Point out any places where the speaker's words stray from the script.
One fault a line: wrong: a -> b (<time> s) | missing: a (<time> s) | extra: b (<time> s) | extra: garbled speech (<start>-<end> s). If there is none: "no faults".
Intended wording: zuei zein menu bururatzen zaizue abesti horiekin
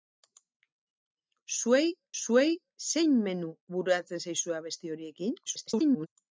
extra: zuei (2.2 s)
extra: garbled speech (5.5-6.1 s)